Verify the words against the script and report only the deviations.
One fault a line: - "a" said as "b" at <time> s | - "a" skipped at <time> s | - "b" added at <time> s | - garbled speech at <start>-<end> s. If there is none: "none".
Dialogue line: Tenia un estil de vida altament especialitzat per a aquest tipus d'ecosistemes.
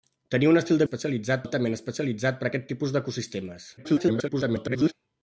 - "vida" said as "especialitzat" at 0.8 s
- garbled speech at 3.8-4.9 s